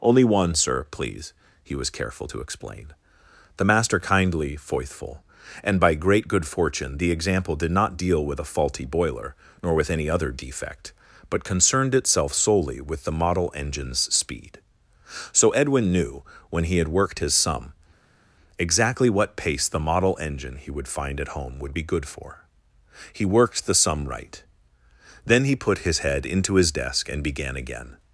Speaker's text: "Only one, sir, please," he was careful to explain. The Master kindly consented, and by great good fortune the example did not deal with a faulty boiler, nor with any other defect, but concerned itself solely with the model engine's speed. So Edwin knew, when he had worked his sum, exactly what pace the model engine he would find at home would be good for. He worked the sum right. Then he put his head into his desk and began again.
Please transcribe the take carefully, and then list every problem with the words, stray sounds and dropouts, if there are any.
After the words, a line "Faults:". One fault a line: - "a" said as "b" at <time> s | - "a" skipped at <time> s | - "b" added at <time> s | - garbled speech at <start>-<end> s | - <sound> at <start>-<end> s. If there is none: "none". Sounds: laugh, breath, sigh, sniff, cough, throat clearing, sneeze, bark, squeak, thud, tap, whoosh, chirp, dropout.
"Only one, sir, please," he was careful to explain. The Master kindly foithful, and by great good fortune the example did not deal with a faulty boiler, nor with any other defect, but concerned itself solely with the model engine's speed. So Edwin knew, when he had worked his sum, exactly what pace the model engine he would find at home would be good for. He worked the sum right. Then he put his head into his desk and began again.
Faults:
- "consented" said as "foithful" at 4.5 s